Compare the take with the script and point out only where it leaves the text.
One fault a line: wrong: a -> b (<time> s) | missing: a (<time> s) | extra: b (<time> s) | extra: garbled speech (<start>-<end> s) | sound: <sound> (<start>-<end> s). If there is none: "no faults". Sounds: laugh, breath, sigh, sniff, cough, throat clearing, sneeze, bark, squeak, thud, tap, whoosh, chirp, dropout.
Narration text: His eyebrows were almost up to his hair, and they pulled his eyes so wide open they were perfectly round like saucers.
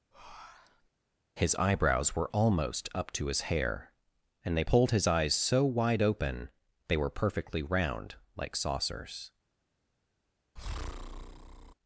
sound: breath (0.1-0.9 s)
sound: breath (10.6-11.7 s)